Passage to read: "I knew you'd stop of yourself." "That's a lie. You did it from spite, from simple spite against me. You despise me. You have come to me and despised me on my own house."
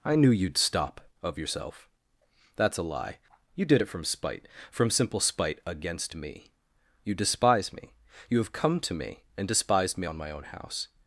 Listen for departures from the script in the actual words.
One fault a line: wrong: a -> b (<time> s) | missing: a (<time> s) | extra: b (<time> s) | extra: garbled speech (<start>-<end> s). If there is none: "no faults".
no faults